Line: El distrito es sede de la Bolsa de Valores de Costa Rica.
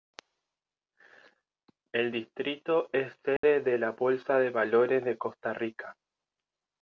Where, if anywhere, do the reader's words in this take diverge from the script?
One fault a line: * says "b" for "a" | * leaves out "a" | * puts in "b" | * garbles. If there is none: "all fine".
all fine